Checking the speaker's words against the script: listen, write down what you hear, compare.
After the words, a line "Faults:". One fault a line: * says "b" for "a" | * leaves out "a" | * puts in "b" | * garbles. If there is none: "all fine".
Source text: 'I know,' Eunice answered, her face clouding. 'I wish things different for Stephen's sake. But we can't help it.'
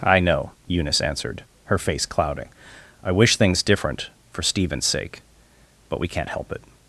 'I know,' Eunice answered, her face clouding. 'I wish things different for Stephen's sake. But we can't help it.'
Faults:
all fine